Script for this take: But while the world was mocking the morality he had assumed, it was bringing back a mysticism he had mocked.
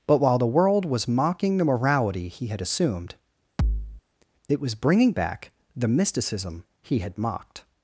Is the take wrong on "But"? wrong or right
right